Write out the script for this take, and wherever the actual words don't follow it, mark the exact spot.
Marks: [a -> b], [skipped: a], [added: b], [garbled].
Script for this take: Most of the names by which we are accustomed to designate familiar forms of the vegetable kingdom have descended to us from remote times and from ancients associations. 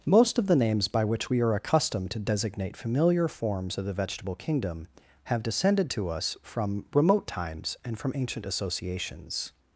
Most of the names by which we are accustomed to designate familiar forms of the vegetable kingdom have descended to us from remote times and from [ancients -> ancient] associations.